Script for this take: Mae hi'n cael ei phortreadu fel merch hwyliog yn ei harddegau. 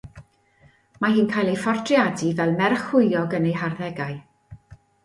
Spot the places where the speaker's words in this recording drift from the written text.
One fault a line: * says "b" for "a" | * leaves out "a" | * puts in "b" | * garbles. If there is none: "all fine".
all fine